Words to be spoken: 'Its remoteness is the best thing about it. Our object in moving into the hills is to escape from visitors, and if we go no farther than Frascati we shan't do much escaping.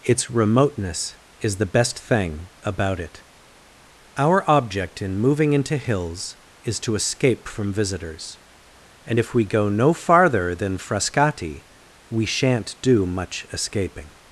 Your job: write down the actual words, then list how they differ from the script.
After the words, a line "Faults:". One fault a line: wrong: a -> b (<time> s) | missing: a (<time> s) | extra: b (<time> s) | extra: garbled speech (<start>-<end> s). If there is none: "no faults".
'Its remoteness is the best thing about it. Our object in moving into hills is to escape from visitors, and if we go no farther than Frascati we shan't do much escaping.
Faults:
missing: the (5.8 s)